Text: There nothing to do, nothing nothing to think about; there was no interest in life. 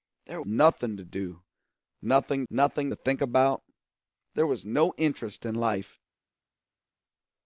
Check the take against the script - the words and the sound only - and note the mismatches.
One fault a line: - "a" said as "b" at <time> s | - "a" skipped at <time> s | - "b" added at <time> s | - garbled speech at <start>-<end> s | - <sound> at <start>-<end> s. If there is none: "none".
none